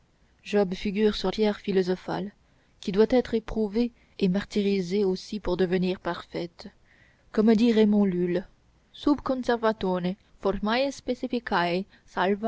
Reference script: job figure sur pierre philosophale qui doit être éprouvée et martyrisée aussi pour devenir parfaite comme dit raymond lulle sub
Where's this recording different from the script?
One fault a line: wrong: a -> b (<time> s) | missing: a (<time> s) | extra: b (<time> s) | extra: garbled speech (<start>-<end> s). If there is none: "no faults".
no faults